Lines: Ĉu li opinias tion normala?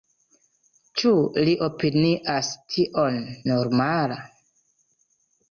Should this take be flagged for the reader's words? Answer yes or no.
no